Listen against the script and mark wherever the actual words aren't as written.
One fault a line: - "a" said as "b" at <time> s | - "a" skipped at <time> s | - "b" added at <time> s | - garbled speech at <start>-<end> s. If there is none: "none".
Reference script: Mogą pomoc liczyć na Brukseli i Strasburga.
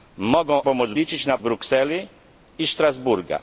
none